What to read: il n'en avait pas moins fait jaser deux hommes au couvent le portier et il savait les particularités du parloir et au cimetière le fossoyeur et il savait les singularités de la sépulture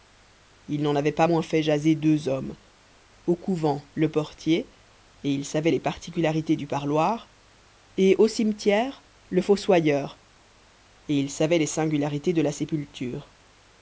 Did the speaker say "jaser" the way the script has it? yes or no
yes